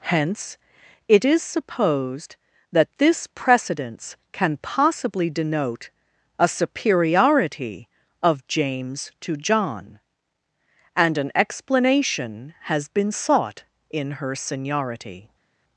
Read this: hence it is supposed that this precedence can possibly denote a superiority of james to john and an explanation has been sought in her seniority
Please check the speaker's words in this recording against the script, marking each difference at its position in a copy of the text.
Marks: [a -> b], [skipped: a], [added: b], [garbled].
hence it is supposed that this precedence can possibly denote a superiority of james to john and an explanation has been sought in her seniority